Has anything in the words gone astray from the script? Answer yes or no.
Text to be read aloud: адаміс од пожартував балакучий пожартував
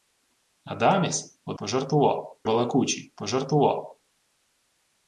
no